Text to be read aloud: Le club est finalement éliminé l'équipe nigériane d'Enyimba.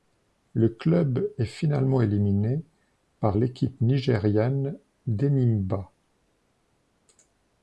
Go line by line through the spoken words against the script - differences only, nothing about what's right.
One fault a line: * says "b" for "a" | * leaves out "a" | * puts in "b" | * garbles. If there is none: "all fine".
* puts in "par"